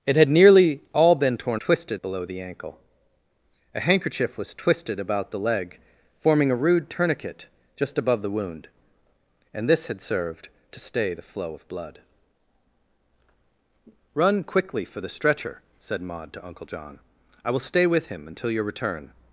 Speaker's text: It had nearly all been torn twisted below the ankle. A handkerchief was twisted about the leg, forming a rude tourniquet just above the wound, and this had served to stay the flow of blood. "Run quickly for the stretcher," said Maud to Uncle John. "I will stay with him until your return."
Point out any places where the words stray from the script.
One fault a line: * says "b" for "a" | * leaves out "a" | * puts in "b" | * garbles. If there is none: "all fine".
all fine